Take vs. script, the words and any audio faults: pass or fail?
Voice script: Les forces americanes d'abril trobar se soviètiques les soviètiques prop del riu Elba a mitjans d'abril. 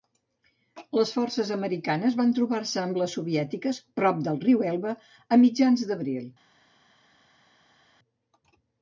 fail